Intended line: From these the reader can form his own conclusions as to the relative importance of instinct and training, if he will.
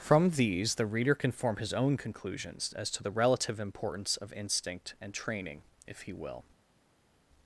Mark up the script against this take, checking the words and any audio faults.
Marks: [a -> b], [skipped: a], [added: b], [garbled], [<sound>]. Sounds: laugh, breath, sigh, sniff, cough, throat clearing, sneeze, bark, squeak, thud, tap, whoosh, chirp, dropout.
From these the reader can form his own conclusions as to the relative importance of instinct and training, if he will.